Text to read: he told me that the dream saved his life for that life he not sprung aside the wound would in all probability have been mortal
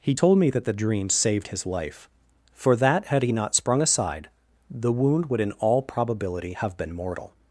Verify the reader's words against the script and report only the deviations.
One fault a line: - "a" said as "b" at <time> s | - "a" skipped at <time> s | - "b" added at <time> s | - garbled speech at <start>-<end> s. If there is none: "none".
- "life" said as "had" at 3.1 s